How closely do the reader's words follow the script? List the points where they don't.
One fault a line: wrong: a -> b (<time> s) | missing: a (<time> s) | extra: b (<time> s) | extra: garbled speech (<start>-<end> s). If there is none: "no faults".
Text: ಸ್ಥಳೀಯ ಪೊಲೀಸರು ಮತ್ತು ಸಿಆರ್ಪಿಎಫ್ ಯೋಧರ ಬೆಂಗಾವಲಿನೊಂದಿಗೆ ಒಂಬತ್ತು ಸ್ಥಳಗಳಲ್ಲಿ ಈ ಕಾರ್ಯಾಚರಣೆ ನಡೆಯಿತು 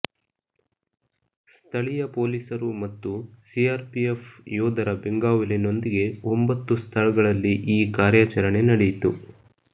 no faults